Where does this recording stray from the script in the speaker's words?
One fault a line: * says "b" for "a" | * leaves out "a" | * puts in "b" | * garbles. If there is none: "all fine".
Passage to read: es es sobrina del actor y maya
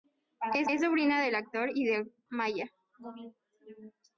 all fine